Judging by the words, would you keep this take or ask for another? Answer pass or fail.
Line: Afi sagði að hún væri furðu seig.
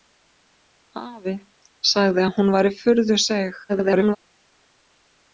fail